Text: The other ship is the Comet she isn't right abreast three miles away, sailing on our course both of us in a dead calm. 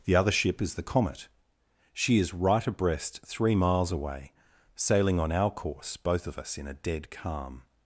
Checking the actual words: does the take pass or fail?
fail